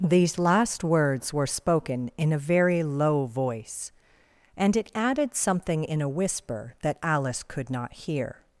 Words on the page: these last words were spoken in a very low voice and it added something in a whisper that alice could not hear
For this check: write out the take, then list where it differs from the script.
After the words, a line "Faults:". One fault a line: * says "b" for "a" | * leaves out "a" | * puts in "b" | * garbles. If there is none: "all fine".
these last words were spoken in a very low voice and it added something in a whisper that alice could not hear
Faults:
all fine